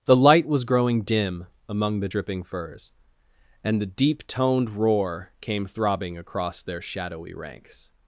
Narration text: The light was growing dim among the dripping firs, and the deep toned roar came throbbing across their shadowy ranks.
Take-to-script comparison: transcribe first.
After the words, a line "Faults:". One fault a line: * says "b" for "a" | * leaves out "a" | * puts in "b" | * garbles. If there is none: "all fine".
The light was growing dim among the dripping firs, and the deep toned roar came throbbing across their shadowy ranks.
Faults:
all fine